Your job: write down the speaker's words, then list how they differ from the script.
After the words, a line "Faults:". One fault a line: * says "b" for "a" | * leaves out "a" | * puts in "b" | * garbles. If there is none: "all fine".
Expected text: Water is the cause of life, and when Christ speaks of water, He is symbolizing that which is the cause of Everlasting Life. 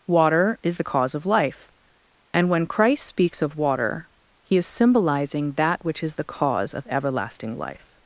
Water is the cause of life, and when Christ speaks of water, He is symbolizing that which is the cause of Everlasting Life.
Faults:
all fine